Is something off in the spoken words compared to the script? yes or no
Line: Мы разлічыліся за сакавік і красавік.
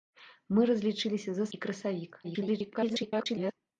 yes